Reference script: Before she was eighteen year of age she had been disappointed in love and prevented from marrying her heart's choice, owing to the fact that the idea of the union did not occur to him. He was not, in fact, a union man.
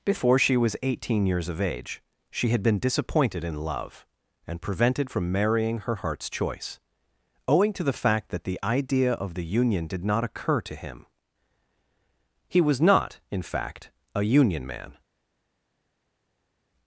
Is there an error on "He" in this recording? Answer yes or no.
no